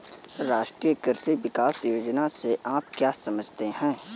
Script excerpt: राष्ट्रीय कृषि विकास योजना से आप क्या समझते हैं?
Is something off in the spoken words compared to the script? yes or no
no